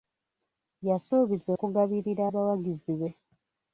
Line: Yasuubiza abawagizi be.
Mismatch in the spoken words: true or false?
true